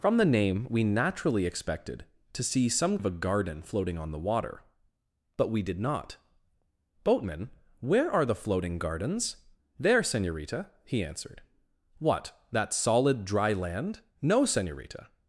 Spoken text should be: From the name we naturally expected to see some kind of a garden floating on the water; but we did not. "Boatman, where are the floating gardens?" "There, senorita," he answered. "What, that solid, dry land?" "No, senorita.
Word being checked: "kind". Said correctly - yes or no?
no